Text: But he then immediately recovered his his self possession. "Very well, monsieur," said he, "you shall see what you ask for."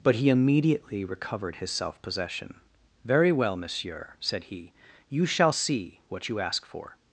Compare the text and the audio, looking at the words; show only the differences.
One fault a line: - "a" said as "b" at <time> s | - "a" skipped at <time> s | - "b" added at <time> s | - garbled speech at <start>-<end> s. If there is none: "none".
- "then" skipped at 0.3 s
- "his" skipped at 1.7 s